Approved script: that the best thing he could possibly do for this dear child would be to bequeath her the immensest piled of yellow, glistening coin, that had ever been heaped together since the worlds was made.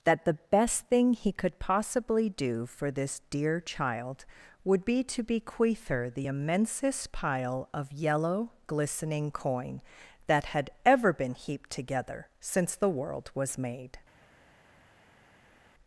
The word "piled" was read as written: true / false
false